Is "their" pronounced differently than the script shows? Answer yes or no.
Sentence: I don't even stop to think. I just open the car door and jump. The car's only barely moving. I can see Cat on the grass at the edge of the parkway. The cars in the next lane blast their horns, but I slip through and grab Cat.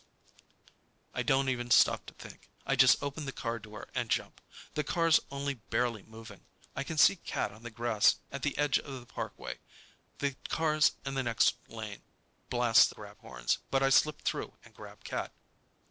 yes